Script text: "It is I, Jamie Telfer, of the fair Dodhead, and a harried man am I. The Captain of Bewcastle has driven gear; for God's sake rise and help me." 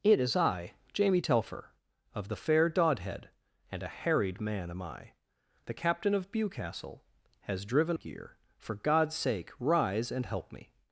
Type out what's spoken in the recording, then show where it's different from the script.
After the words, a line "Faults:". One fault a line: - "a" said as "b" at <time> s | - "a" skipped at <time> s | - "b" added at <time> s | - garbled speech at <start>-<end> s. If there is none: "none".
"It is I, Jamie Telfer, of the fair Dodhead, and a harried man am I. The Captain of Bewcastle has driven gear; for God's sake rise and help me."
Faults:
none